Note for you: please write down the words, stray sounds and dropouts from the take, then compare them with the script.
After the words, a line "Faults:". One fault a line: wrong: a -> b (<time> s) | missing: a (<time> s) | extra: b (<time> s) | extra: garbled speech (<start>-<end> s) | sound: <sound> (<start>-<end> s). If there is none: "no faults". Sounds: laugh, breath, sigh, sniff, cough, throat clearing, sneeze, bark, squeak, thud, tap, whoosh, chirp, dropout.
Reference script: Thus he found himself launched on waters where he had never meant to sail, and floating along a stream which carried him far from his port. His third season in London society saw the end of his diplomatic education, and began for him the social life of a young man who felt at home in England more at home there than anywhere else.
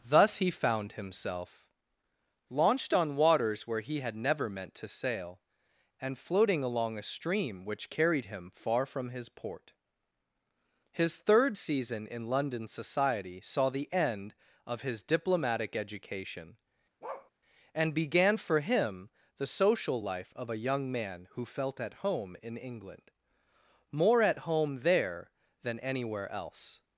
Thus he found himself launched on waters where he had never meant to sail, and floating along a stream which carried him far from his port. His third season in London society saw the end of his diplomatic education, and began for him the social life of a young man who felt at home in England more at home there than anywhere else.
Faults:
sound: bark (17.0-17.3 s)